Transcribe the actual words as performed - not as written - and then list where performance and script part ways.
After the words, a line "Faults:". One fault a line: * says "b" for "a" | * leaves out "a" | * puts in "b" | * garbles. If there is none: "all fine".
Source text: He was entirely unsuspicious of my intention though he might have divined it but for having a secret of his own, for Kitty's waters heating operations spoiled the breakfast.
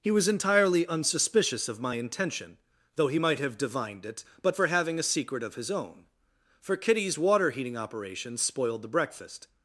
He was entirely unsuspicious of my intention though he might have divined it but for having a secret of his own, for Kitty's water heating operations spoiled the breakfast.
Faults:
* says "water" for "waters"